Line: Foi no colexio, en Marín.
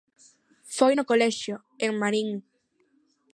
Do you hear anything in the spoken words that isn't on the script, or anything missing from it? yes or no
no